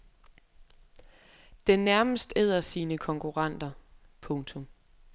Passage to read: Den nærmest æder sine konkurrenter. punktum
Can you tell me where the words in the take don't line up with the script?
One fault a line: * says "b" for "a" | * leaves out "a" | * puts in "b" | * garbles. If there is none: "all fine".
all fine